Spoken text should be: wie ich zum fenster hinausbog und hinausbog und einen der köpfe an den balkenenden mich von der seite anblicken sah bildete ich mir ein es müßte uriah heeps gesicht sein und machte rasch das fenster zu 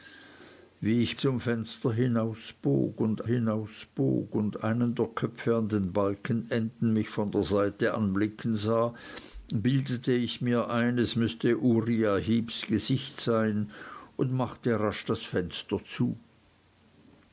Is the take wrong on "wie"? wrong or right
right